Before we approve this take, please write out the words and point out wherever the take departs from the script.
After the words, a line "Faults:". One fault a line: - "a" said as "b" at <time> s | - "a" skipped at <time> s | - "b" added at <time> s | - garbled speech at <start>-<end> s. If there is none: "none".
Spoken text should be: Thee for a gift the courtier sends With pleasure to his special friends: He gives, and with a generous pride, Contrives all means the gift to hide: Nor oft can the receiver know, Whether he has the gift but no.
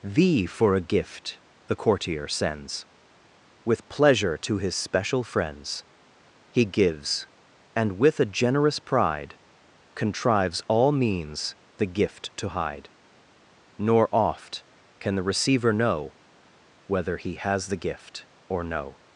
Thee for a gift the courtier sends With pleasure to his special friends: He gives, and with a generous pride, Contrives all means the gift to hide: Nor oft can the receiver know, Whether he has the gift or no.
Faults:
- "but" said as "or" at 18.5 s